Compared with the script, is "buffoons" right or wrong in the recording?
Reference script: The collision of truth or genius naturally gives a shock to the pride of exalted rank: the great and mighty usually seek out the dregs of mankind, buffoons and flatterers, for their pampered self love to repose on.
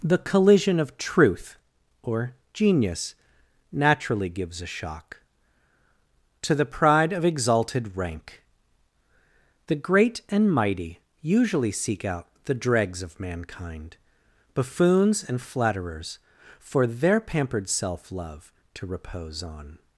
right